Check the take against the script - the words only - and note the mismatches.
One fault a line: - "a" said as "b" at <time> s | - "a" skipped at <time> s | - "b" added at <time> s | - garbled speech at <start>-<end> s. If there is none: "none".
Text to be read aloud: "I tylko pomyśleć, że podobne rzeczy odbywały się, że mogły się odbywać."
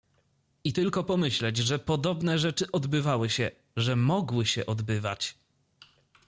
none